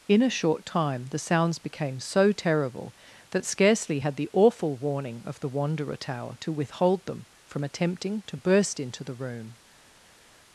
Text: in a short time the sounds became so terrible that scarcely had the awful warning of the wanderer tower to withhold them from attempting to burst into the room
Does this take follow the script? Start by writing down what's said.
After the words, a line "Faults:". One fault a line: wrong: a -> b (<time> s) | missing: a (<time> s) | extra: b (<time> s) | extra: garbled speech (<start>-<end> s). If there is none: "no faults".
in a short time the sounds became so terrible that scarcely had the awful warning of the wanderer tower to withhold them from attempting to burst into the room
Faults:
no faults